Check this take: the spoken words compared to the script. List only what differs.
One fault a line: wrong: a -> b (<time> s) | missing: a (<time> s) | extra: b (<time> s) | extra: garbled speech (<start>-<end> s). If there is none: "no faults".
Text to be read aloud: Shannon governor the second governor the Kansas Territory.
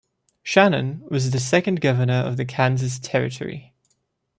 wrong: governor -> was (1.1 s)
extra: of (2.2 s)